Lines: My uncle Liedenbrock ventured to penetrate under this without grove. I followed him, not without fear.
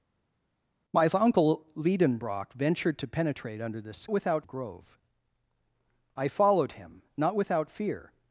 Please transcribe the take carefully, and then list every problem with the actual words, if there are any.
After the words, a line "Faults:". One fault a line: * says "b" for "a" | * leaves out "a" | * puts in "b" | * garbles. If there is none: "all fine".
My uncle Liedenbrock ventured to penetrate under this without grove. I followed him, not without fear.
Faults:
all fine